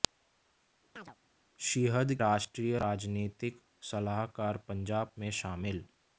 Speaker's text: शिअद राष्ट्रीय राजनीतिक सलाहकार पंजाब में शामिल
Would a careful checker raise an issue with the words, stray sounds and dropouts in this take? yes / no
yes